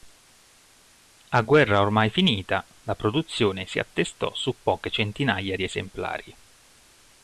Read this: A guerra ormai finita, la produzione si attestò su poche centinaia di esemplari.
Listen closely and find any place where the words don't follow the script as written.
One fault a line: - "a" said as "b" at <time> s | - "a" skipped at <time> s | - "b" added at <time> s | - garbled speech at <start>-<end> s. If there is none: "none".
none